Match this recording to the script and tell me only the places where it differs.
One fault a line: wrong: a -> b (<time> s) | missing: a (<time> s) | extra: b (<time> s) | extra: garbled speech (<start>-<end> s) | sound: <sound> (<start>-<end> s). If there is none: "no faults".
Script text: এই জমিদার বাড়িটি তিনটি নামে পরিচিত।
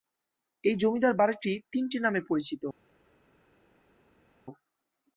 no faults